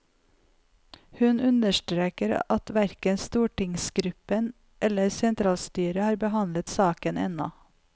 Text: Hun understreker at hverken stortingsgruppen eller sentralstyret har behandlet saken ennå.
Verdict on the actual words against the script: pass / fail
pass